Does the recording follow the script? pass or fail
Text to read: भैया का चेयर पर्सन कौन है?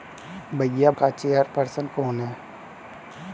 pass